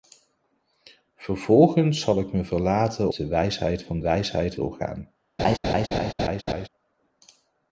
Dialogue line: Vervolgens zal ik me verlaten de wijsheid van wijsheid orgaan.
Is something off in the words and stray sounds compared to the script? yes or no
yes